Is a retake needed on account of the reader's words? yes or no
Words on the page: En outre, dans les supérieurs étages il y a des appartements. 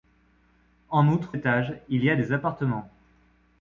yes